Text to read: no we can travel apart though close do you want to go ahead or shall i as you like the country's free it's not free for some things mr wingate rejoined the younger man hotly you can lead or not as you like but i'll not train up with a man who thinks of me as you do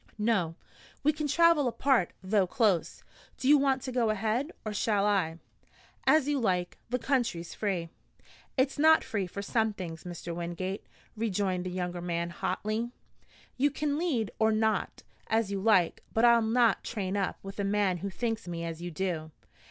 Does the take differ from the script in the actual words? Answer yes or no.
yes